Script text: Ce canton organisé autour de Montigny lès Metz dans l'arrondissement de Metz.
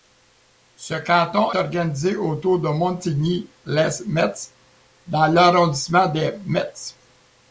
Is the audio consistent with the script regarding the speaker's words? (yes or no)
yes